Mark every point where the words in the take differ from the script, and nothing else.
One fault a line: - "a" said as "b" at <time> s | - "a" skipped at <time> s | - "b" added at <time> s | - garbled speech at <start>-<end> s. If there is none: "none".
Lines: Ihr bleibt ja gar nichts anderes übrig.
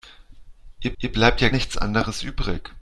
- "ihr" added at 1.0 s
- "gar" skipped at 1.5 s